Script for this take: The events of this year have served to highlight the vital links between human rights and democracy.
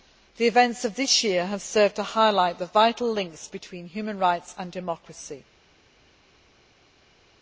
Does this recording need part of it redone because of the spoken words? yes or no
no